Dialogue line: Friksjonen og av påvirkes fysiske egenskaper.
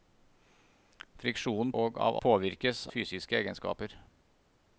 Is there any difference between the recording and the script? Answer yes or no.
no